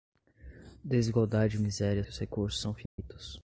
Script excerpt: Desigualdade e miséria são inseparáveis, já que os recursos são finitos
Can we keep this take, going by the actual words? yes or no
no